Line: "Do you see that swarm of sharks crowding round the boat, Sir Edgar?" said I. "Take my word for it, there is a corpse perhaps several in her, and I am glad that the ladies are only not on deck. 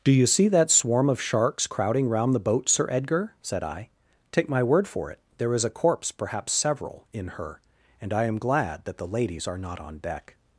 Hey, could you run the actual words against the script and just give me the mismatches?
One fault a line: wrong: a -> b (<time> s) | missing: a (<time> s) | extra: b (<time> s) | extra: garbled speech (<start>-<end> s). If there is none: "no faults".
missing: only (9.6 s)